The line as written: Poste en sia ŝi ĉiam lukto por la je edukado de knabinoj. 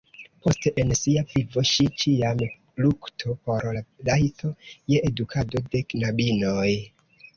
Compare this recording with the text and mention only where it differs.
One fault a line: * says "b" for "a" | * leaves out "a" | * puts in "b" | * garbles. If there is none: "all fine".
* puts in "vivo"
* puts in "rajto"